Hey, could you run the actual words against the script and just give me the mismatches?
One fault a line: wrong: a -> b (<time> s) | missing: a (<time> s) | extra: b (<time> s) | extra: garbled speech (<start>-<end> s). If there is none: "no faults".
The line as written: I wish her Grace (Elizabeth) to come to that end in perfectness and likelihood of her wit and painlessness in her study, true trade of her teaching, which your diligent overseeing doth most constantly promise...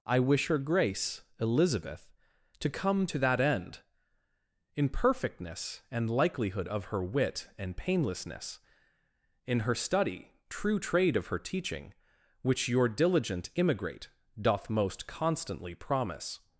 wrong: overseeing -> immigrate (13.6 s)